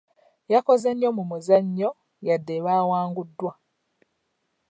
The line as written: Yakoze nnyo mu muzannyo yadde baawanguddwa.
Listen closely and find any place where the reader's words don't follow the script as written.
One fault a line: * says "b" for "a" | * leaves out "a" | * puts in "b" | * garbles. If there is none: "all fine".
all fine